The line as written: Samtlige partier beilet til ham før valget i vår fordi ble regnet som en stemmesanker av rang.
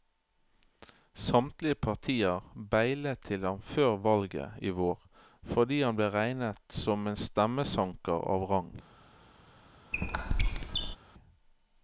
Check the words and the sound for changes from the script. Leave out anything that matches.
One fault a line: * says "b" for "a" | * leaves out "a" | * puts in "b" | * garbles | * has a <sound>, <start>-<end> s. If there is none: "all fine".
* puts in "han"
* has a squeak, 9.9-11.0 s